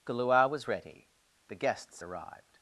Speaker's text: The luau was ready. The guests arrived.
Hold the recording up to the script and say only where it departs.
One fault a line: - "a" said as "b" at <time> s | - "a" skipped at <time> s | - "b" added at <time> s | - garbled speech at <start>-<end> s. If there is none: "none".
none